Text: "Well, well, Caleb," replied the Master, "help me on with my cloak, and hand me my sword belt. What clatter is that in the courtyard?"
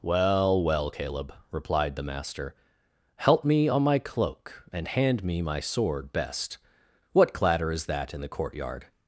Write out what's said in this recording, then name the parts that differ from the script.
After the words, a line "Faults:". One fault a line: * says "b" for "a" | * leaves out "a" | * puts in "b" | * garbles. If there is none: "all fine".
"Well, well, Caleb," replied the Master, "help me on my cloak, and hand me my sword best. What clatter is that in the courtyard?"
Faults:
* leaves out "with"
* says "best" for "belt"